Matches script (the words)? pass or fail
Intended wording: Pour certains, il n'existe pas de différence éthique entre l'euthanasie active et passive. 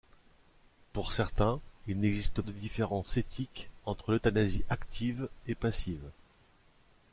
fail